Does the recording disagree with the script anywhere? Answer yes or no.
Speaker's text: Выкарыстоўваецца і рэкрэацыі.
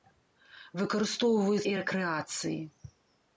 no